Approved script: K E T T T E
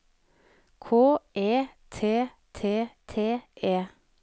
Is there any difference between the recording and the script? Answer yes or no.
no